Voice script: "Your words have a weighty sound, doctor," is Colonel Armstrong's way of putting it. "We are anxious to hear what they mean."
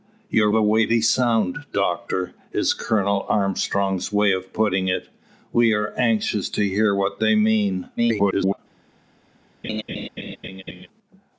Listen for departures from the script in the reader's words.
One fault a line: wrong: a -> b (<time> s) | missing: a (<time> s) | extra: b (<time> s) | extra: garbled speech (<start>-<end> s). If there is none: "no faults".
missing: words have (0.5 s)
extra: garbled speech (8.0-8.6 s)